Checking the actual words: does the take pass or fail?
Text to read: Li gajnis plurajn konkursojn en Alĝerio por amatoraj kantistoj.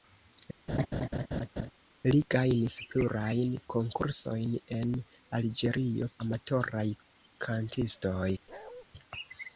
fail